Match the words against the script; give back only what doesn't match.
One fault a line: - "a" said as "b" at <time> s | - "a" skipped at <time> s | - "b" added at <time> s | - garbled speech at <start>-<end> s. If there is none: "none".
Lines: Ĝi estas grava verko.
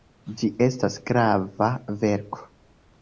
none